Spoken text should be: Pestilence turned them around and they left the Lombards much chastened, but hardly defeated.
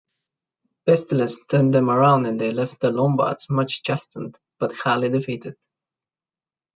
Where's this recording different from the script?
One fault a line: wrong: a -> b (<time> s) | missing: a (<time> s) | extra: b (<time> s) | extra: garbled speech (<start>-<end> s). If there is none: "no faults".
no faults